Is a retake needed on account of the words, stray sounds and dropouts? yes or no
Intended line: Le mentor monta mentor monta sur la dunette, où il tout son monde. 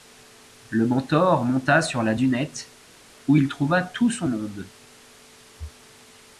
yes